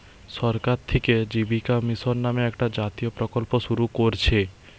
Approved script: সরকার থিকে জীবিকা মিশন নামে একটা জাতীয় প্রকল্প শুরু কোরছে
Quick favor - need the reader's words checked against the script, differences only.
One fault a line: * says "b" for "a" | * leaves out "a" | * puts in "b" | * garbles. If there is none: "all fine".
all fine